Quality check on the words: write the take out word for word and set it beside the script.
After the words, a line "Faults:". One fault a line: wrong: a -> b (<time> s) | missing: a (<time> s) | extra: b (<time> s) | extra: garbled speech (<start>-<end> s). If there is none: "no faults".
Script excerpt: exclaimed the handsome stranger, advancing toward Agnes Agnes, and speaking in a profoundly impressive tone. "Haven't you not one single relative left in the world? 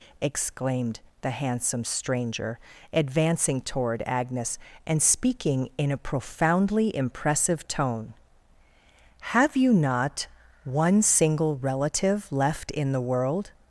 exclaimed the handsome stranger, advancing toward Agnes, and speaking in a profoundly impressive tone. "Have you not one single relative left in the world?
Faults:
missing: Agnes (4.6 s)
wrong: Haven't -> Have (9.3 s)